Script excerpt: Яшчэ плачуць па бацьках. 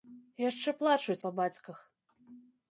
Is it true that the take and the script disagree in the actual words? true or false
false